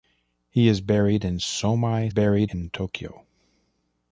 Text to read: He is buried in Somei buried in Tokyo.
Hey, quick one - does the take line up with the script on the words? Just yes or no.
yes